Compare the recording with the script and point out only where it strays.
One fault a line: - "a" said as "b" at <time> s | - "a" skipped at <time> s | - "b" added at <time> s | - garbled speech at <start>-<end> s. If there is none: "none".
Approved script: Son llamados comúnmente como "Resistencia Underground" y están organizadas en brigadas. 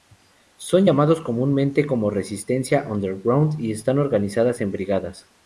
none